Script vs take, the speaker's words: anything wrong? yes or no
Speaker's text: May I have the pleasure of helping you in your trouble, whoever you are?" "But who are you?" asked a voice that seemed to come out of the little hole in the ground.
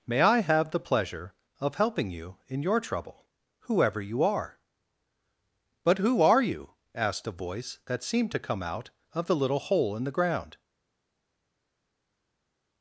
no